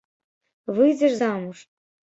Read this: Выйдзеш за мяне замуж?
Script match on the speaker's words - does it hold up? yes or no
no